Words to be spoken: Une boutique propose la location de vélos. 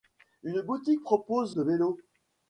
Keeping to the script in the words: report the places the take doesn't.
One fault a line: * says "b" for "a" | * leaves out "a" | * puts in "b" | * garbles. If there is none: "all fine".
* leaves out "la location"